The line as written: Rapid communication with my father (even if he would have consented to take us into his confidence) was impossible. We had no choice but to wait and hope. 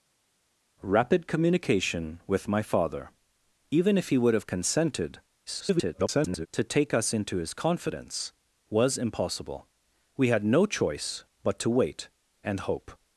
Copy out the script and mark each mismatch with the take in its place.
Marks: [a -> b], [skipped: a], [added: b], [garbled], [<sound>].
Rapid communication with my father (even if he would have consented [garbled] to take us into his confidence) was impossible. We had no choice but to wait and hope.